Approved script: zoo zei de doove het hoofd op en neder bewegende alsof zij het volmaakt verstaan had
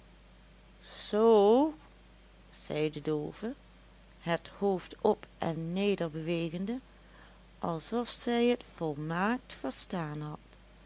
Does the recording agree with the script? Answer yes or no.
yes